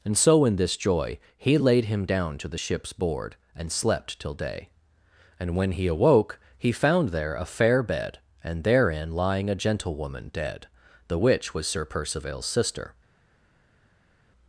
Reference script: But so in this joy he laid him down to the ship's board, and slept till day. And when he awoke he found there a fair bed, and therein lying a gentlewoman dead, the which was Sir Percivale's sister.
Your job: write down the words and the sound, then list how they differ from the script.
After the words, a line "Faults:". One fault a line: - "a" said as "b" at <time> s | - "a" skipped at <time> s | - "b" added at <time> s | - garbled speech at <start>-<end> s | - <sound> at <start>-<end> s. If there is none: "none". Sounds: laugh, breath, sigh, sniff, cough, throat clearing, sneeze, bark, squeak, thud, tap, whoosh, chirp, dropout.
And so in this joy he laid him down to the ship's board, and slept till day. And when he awoke he found there a fair bed, and therein lying a gentlewoman dead, the which was Sir Percivale's sister.
Faults:
- "But" said as "And" at 0.0 s